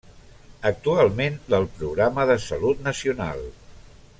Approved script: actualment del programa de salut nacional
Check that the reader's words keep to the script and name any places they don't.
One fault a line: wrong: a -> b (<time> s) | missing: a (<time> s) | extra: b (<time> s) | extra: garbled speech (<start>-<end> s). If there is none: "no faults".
no faults